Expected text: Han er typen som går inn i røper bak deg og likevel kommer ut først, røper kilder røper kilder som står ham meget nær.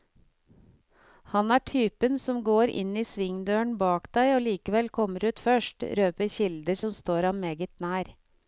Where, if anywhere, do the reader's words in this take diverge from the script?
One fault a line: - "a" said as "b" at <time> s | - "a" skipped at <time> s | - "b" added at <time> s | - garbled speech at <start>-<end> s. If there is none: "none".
- "røper" said as "svingdøren" at 3.1 s
- "røper kilder" skipped at 6.8 s